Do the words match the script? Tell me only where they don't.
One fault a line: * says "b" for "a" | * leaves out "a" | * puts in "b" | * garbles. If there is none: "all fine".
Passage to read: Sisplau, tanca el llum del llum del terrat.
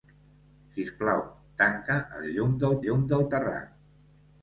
all fine